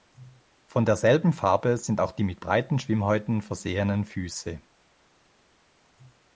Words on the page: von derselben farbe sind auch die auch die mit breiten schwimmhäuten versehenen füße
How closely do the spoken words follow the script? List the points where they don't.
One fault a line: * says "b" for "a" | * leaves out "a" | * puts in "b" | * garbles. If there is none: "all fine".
* leaves out "auch die"